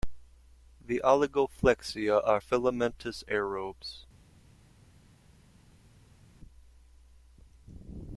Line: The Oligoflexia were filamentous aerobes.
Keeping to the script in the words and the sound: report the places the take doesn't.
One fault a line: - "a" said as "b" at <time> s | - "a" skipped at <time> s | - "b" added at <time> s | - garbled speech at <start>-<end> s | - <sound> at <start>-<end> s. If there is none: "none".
- "were" said as "are" at 2.3 s